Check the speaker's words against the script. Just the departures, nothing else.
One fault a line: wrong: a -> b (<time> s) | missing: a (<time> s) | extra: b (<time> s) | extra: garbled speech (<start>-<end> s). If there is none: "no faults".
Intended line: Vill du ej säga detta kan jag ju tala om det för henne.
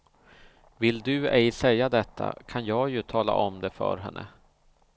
no faults